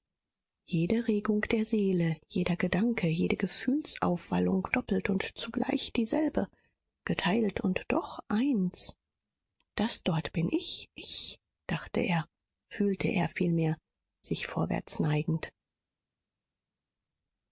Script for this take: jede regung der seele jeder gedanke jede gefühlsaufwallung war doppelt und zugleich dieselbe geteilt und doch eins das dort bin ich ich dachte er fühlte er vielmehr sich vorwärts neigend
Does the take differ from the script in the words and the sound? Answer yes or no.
yes